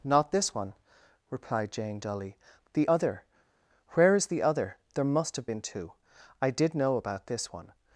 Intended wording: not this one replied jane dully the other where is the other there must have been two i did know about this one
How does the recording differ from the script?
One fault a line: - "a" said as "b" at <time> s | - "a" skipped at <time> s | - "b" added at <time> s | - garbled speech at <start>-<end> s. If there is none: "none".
none